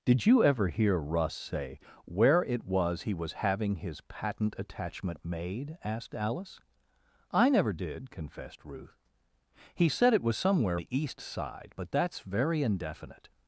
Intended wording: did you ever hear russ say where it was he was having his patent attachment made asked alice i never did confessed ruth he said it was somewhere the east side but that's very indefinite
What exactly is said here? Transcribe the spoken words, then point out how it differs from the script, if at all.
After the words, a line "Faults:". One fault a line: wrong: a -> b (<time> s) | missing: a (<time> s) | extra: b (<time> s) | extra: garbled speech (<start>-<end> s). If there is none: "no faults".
did you ever hear russ say where it was he was having his patent attachment made asked alice i never did confessed ruth he said it was somewhere the east side but that's very indefinite
Faults:
no faults